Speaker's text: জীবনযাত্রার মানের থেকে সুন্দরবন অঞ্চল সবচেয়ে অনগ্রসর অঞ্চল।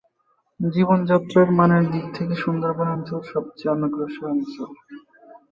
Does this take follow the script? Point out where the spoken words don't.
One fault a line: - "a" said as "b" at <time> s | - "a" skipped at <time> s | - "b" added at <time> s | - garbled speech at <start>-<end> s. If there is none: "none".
- "দিক" added at 1.9 s